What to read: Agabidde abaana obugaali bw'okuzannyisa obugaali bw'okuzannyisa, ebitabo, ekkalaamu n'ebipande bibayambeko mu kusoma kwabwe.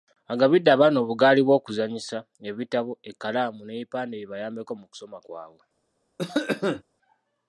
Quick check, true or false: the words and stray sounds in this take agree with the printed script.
false